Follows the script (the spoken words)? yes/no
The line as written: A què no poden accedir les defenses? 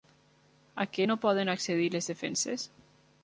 yes